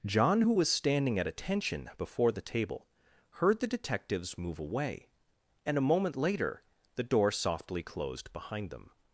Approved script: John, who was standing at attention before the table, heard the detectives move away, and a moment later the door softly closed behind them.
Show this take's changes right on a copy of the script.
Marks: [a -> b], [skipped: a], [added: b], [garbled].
John, who was standing at attention before the table, heard the detectives move away, and a moment later the door softly closed behind them.